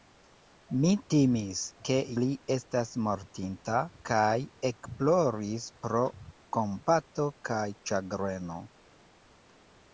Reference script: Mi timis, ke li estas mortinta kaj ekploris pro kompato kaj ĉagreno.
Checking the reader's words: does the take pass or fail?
pass